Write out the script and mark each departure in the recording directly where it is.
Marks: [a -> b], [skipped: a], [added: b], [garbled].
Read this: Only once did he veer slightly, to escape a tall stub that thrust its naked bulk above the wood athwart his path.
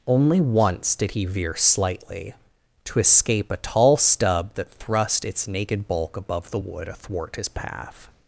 Only once did he veer slightly, to escape a tall stub that thrust its naked bulk above the wood athwart his path.